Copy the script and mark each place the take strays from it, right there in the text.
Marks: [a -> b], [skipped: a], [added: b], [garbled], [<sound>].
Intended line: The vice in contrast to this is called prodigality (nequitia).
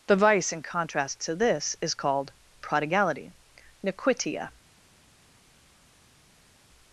The vice in contrast to this is called prodigality (nequitia).